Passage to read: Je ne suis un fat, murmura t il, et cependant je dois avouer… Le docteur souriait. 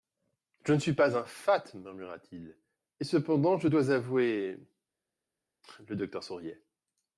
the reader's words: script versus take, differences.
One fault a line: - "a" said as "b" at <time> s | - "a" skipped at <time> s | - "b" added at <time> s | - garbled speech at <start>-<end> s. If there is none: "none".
- "pas" added at 0.9 s